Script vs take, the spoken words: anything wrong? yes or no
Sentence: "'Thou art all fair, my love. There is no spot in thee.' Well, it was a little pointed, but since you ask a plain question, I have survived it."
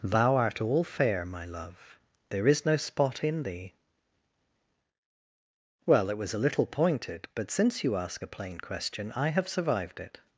no